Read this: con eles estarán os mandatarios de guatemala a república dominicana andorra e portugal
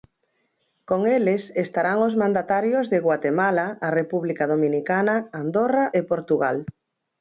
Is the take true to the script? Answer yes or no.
yes